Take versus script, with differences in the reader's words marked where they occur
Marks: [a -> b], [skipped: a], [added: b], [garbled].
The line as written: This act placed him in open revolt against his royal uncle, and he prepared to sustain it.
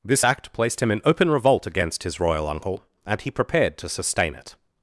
This act placed him in open revolt against his royal uncle, and he prepared to sustain it.